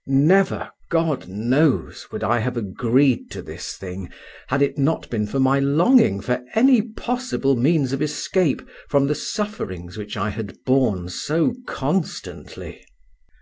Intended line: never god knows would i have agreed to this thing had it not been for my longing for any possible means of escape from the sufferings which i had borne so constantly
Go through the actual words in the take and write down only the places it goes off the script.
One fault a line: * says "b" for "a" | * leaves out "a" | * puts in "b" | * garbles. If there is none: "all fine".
all fine